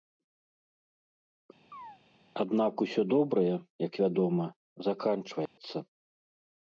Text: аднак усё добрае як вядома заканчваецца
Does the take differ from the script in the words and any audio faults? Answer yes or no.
yes